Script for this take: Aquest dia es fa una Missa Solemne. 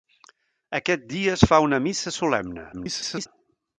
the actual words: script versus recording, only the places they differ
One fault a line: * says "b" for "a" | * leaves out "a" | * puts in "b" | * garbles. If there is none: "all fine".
* garbles